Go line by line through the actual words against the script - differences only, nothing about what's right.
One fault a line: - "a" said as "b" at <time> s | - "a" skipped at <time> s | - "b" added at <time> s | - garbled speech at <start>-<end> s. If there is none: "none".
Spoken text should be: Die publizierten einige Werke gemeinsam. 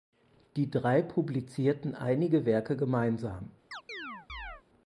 - "drei" added at 0.7 s